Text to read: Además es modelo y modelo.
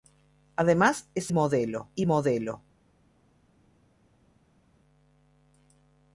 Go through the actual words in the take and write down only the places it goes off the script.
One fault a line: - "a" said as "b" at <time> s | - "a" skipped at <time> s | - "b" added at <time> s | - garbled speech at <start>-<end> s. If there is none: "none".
none